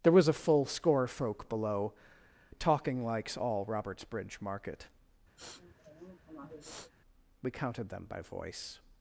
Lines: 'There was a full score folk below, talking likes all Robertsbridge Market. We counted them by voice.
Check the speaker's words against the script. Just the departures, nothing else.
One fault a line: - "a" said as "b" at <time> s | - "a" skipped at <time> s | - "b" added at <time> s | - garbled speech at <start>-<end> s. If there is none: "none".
none